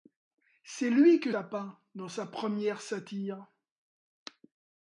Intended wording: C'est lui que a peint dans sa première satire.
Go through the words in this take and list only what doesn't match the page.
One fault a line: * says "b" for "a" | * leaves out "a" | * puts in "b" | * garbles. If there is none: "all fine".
all fine